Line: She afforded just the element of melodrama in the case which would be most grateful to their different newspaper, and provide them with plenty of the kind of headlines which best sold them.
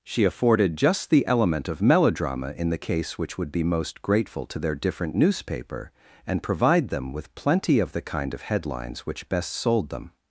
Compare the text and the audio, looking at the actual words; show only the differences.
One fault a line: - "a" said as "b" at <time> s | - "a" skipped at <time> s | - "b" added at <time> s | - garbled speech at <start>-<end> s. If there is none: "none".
none